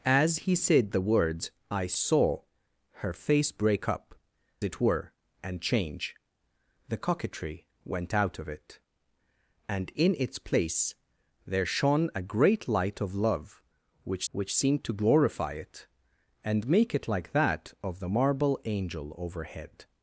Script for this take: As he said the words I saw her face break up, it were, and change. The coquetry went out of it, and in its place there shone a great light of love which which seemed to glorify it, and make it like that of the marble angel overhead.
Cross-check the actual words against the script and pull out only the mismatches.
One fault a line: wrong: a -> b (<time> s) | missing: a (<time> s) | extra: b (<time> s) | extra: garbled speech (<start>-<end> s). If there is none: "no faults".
no faults